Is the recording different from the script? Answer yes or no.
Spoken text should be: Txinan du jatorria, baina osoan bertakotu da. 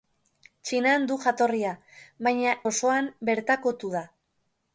no